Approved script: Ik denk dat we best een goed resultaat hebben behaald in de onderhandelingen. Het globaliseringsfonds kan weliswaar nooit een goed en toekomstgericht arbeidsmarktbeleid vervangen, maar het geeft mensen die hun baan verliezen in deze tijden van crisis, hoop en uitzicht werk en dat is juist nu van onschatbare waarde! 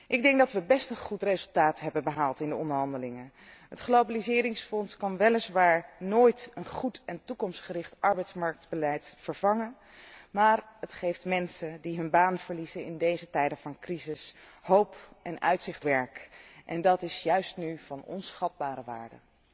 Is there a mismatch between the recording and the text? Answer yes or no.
no